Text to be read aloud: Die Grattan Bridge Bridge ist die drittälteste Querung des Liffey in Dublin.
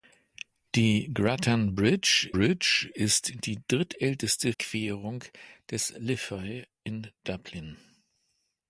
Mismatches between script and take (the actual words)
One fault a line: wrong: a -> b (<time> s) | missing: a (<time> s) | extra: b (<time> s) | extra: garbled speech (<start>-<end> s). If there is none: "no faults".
no faults